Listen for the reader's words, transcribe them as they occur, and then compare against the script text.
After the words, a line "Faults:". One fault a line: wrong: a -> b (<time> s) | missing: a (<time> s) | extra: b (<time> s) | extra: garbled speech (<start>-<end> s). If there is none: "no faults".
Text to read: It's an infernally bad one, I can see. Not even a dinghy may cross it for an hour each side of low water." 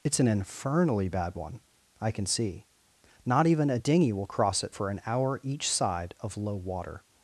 It's an infernally bad one, I can see. Not even a dinghy will cross it for an hour each side of low water."
Faults:
wrong: may -> will (4.1 s)